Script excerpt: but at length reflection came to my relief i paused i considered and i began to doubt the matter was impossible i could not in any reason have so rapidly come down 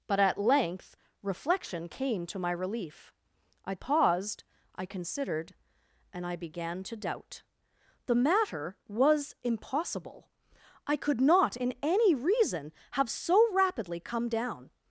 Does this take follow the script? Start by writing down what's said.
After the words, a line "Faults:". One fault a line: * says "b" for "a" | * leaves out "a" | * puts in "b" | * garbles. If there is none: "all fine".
but at length reflection came to my relief i paused i considered and i began to doubt the matter was impossible i could not in any reason have so rapidly come down
Faults:
all fine